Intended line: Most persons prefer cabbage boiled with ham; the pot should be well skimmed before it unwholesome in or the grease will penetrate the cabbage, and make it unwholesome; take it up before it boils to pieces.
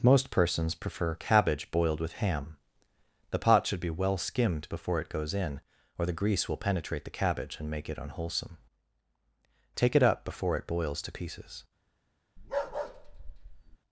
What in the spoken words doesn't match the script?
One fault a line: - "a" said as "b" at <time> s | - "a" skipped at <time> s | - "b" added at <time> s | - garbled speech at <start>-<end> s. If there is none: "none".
- "unwholesome" said as "goes" at 5.1 s